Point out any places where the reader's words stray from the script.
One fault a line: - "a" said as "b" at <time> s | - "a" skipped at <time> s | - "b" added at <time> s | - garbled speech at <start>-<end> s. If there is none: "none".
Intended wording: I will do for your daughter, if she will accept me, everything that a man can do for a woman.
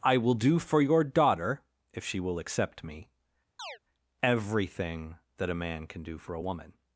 none